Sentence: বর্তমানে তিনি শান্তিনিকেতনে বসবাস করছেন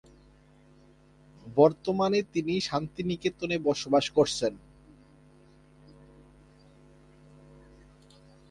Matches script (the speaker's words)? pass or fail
pass